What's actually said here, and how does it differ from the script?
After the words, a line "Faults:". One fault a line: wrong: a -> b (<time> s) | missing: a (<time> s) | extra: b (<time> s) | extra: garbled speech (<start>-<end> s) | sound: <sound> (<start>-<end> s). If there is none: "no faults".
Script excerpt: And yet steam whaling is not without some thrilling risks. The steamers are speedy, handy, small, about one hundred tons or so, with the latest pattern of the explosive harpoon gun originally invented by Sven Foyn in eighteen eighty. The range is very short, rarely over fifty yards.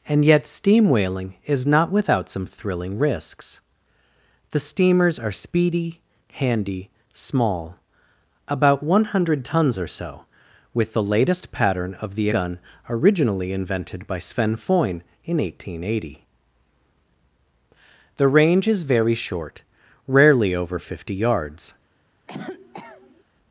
And yet steam whaling is not without some thrilling risks. The steamers are speedy, handy, small, about one hundred tons or so, with the latest pattern of the gun originally invented by Sven Foyn in eighteen eighty. The range is very short, rarely over fifty yards.
Faults:
missing: explosive harpoon (12.3 s)
sound: cough (22.3-23.2 s)